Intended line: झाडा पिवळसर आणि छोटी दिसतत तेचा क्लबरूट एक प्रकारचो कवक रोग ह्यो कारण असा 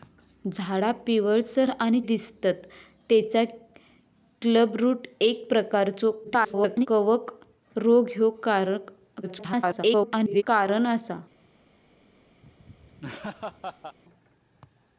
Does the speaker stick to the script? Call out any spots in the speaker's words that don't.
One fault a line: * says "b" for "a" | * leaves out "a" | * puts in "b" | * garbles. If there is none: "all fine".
* leaves out "छोटी"
* garbles
* garbles